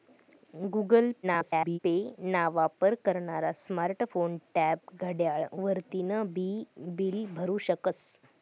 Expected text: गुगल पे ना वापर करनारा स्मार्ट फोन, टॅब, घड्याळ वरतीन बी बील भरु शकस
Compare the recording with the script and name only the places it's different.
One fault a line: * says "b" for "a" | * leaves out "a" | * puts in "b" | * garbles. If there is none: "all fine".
* garbles